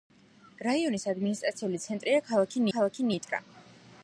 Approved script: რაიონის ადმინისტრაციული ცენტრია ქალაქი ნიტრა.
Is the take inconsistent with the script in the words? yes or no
yes